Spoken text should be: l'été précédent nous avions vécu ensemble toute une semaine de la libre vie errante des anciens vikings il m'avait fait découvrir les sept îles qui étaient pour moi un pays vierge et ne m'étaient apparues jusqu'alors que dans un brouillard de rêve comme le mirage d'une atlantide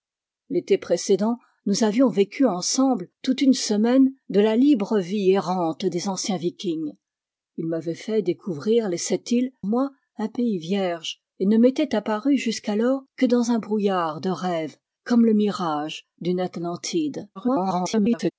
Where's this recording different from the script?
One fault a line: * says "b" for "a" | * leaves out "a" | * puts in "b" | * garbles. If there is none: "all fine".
* leaves out "qui étaient pour"
* garbles